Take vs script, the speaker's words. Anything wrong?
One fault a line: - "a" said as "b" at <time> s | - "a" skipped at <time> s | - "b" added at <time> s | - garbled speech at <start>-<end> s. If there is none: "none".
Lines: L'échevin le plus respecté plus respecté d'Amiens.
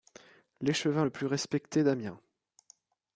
- "plus respecté" skipped at 1.8 s